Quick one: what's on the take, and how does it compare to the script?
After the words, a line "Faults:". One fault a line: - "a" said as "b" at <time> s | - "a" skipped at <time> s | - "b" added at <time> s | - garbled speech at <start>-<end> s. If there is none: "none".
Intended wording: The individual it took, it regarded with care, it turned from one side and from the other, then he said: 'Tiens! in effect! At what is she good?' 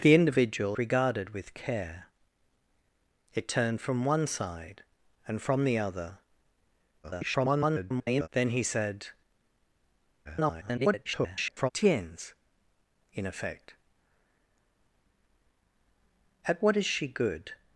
The individual regarded with care, it turned from one side and from the other, [garbled] then he said: [garbled] 'Tiens! in effect! At what is she good?'
Faults:
- "it took it" skipped at 0.8 s
- garbled speech at 7.0-8.3 s
- garbled speech at 10.2-11.7 s